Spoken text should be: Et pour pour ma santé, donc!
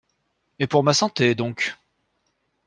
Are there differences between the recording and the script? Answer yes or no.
yes